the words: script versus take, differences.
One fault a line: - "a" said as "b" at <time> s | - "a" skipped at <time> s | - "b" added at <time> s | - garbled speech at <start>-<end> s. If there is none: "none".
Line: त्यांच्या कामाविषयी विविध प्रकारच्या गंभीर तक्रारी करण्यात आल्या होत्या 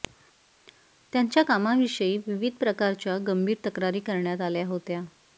none